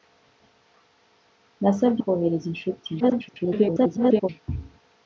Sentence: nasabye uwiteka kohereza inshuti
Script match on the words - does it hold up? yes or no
no